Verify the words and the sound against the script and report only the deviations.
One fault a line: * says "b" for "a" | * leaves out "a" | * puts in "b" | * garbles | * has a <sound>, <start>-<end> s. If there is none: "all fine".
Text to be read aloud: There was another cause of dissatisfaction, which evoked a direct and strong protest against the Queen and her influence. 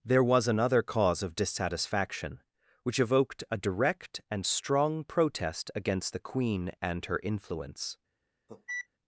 * has a cough, 8.5-8.9 s